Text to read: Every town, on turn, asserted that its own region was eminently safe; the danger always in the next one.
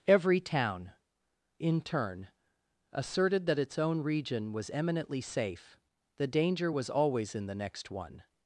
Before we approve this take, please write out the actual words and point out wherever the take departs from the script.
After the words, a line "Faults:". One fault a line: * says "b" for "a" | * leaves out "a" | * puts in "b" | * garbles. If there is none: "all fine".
Every town, in turn, asserted that its own region was eminently safe; the danger was always in the next one.
Faults:
* says "in" for "on"
* puts in "was"